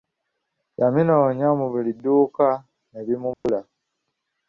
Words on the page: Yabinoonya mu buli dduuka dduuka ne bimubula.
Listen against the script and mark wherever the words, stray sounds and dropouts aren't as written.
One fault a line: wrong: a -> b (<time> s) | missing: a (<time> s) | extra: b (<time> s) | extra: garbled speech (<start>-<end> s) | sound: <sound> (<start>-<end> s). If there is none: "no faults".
missing: dduuka (2.5 s)
sound: dropout (3.3-3.4 s)